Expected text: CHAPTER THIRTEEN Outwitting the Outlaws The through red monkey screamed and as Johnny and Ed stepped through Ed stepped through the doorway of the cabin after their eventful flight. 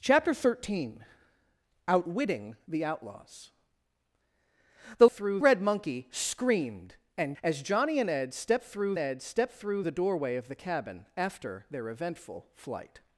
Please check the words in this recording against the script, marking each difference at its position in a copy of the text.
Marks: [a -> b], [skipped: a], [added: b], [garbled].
CHAPTER THIRTEEN Outwitting the Outlaws The through red monkey screamed and as Johnny and Ed stepped through Ed stepped through the doorway of the cabin after their eventful flight.